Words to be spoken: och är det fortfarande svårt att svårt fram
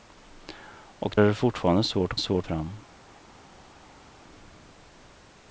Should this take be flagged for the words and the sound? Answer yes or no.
no